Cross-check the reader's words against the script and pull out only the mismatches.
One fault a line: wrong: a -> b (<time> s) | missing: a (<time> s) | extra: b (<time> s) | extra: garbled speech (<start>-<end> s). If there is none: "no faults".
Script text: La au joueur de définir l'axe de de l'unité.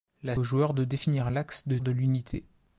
no faults